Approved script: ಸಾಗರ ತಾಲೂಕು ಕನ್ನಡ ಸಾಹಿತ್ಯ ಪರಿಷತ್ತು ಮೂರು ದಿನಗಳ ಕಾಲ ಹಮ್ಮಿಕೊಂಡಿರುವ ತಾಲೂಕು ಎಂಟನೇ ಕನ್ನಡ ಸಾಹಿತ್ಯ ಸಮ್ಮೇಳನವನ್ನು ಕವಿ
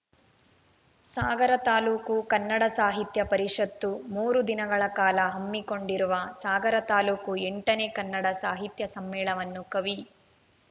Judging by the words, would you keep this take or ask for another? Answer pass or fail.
fail